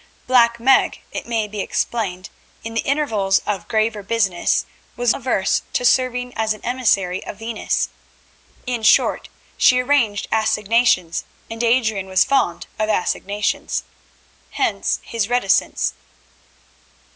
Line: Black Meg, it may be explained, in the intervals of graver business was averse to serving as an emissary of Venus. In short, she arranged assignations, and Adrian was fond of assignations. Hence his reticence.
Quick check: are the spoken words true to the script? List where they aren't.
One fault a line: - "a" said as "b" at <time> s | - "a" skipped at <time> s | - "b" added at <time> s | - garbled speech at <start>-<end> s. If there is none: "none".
none